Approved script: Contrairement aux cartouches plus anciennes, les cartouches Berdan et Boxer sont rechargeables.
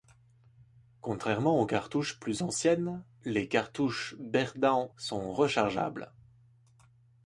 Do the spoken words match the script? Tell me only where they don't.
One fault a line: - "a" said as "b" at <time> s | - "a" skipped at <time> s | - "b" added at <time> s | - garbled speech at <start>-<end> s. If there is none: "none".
- "et Boxer" skipped at 4.9 s